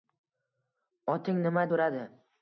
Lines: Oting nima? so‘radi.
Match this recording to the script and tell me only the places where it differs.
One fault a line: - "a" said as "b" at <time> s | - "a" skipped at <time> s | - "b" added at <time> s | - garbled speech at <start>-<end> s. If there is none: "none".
none